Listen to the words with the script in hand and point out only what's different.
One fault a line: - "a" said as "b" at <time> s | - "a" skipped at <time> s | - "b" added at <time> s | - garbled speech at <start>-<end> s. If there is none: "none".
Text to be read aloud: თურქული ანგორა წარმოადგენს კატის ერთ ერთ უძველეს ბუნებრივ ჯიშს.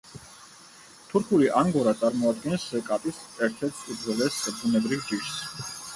none